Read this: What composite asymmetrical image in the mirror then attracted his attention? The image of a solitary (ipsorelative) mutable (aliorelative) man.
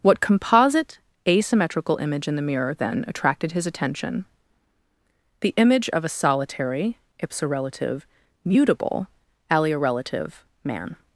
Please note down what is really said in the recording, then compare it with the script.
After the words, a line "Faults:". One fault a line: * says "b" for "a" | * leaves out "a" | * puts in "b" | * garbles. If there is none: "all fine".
What composite asymmetrical image in the mirror then attracted his attention? The image of a solitary (ipsorelative) mutable (aliorelative) man.
Faults:
all fine